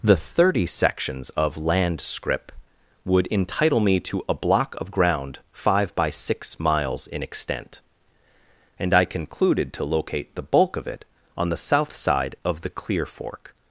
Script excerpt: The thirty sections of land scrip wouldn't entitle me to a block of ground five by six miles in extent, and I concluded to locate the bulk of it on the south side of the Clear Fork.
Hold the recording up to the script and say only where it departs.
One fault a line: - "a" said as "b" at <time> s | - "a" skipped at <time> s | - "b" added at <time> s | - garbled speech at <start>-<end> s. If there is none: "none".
- "wouldn't" said as "would" at 3.0 s